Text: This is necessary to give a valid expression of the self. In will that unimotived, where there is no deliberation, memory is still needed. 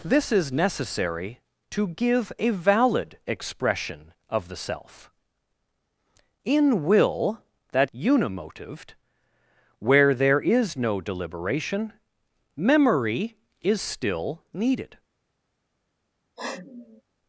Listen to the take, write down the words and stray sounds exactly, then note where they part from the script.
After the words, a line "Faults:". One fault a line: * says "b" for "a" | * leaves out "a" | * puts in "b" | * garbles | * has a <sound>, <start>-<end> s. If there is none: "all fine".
This is necessary to give a valid expression of the self. In will that unimotived, where there is no deliberation, memory is still needed.
Faults:
* has a sniff, 16.4-17.0 s